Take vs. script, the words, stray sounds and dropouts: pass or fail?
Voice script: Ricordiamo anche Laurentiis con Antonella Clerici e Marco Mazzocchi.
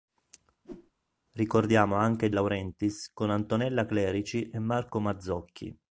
fail